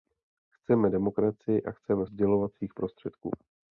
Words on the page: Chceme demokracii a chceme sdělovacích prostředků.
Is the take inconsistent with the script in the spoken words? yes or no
no